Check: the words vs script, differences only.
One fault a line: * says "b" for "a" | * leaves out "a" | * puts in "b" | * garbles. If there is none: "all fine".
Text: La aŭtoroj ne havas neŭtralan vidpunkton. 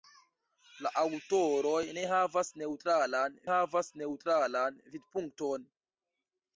* puts in "havas neŭtralan"